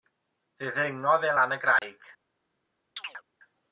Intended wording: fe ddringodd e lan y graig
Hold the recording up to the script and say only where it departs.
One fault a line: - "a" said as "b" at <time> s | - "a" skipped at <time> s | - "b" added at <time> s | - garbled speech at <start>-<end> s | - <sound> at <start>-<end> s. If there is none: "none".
- dropout at 1.8-1.8 s
- chirp at 3.0-3.2 s